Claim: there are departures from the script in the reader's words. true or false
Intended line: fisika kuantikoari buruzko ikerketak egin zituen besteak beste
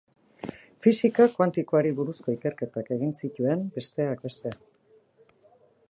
false